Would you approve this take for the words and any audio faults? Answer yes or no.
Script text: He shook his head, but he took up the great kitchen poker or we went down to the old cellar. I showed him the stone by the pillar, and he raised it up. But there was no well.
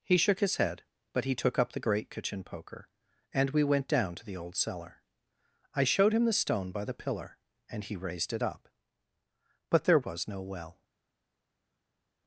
no